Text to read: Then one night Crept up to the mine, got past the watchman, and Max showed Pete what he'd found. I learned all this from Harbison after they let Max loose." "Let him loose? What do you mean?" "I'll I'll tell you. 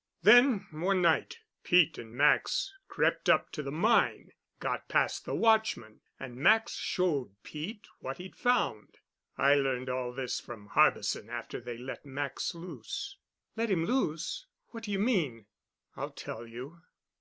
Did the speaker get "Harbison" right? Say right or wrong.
right